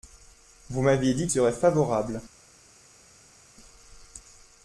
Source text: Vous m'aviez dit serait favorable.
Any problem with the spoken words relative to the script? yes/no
no